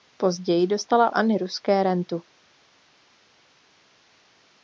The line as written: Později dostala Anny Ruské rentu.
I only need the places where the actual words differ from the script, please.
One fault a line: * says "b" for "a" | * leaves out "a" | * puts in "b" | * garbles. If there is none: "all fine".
all fine